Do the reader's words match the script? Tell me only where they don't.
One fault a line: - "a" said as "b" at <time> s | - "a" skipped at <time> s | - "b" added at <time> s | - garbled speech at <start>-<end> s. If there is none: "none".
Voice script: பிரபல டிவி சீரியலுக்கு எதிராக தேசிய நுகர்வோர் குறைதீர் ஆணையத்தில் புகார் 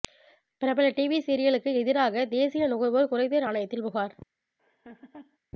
none